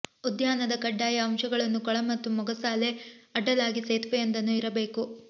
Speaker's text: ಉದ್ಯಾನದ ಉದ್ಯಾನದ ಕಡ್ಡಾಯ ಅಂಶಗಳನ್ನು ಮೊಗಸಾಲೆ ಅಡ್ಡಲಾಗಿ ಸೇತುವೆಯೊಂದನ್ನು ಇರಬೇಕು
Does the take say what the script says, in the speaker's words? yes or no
no